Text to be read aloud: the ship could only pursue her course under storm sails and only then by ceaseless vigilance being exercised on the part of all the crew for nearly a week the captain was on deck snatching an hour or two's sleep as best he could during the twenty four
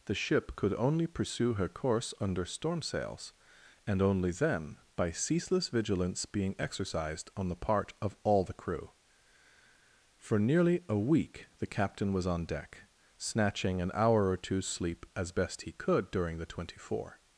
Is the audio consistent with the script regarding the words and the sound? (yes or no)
yes